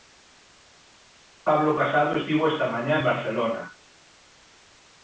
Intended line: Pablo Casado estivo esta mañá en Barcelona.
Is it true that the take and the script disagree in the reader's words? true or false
false